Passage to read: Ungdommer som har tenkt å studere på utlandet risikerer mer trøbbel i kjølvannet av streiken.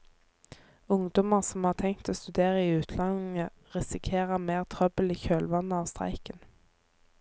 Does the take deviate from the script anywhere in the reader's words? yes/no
yes